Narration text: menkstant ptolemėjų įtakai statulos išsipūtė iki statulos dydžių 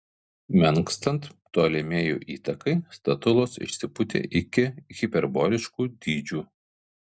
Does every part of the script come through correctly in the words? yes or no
no